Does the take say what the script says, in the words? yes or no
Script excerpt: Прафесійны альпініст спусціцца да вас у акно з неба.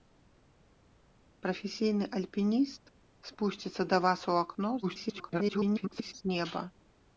no